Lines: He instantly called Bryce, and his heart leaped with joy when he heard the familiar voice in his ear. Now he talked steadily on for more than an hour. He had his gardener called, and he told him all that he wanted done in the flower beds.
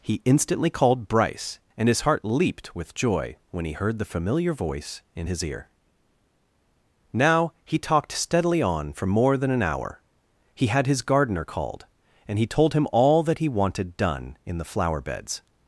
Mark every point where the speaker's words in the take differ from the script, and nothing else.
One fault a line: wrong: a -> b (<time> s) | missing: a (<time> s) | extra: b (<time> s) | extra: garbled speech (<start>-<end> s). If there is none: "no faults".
no faults